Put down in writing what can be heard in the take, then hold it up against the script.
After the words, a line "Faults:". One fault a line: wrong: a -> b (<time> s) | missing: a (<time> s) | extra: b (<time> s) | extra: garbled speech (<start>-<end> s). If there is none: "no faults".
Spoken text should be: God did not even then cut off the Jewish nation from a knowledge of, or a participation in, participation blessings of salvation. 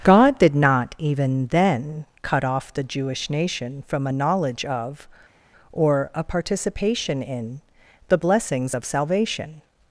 God did not even then cut off the Jewish nation from a knowledge of, or a participation in, the blessings of salvation.
Faults:
wrong: participation -> the (8.1 s)